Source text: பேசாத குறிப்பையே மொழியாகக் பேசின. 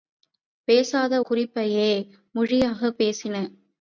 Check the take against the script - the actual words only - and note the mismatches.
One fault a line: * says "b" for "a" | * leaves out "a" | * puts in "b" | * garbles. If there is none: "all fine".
all fine